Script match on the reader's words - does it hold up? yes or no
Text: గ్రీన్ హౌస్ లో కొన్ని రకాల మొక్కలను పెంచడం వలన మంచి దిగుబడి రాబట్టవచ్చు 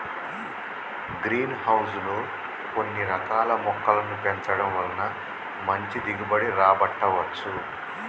yes